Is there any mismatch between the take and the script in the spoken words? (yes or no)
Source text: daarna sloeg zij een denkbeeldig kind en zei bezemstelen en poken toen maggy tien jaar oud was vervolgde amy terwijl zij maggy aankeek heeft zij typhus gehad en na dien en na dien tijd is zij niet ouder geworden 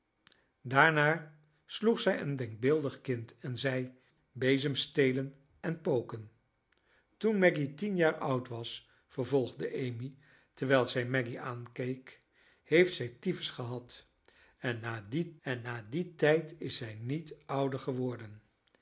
no